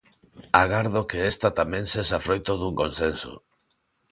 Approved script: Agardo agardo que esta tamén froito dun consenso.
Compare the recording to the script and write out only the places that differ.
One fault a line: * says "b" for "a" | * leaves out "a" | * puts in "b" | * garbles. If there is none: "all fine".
* leaves out "agardo"
* puts in "sexa"